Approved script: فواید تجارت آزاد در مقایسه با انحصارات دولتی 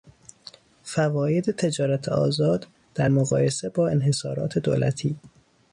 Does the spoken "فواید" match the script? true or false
true